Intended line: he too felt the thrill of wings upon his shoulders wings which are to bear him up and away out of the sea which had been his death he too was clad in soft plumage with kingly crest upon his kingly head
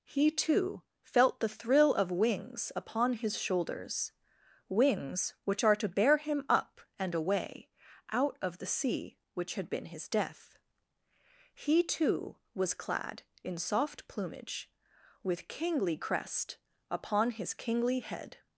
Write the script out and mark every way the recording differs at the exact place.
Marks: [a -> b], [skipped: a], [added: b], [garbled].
he too felt the thrill of wings upon his shoulders wings which are to bear him up and away out of the sea which had been his death he too was clad in soft plumage with kingly crest upon his kingly head